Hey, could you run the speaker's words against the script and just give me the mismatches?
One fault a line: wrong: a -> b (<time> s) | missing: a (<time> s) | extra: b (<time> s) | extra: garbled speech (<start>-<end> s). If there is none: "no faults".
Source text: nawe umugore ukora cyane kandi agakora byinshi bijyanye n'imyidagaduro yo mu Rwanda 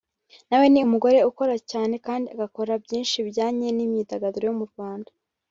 extra: ni (0.7 s)